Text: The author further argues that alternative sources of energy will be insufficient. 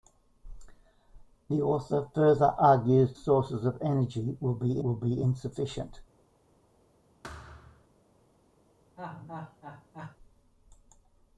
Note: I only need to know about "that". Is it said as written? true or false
false